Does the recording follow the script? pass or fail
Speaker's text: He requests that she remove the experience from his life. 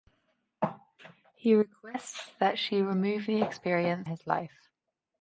fail